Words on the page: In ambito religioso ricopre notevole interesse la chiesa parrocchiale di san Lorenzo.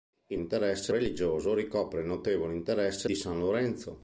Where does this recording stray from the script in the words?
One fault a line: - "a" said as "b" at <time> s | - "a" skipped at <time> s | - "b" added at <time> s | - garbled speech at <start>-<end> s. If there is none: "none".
- "ambito" said as "interesse" at 0.4 s
- "la chiesa parrocchiale" skipped at 3.1 s